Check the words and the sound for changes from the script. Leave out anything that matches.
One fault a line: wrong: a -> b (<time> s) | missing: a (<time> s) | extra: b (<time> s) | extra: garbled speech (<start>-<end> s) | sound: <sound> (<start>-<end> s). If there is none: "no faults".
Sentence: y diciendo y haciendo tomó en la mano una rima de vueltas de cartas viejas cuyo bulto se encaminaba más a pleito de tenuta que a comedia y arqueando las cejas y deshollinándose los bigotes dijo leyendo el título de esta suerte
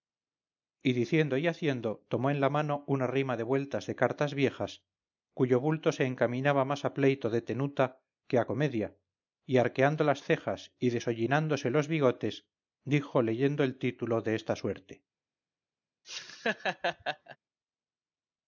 sound: laugh (16.0-17.4 s)